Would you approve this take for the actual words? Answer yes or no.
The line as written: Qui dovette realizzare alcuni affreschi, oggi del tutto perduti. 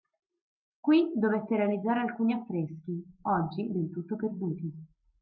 yes